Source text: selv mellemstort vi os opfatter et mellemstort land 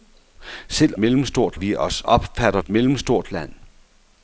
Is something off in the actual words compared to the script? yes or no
no